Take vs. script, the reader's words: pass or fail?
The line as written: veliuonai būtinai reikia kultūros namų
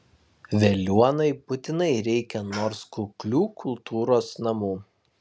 fail